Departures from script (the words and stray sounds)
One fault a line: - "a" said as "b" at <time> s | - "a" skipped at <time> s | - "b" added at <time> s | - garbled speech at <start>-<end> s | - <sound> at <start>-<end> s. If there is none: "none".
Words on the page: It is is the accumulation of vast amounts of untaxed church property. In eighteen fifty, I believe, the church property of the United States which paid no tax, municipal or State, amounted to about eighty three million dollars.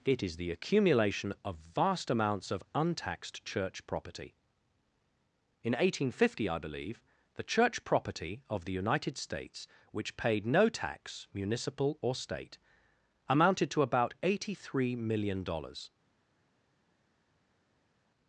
- "is" skipped at 0.4 s